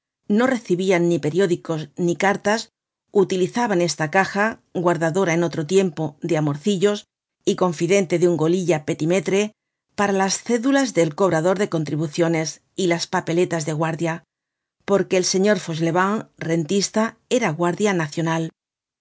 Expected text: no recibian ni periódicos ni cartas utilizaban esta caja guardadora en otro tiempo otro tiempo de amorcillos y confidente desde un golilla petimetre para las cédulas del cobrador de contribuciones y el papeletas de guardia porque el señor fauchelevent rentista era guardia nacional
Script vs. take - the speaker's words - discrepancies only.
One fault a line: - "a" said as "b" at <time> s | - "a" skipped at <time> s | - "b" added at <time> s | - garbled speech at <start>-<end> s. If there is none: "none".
- "otro tiempo" skipped at 6.2 s
- "desde" said as "de" at 8.2 s
- "el" said as "las" at 12.9 s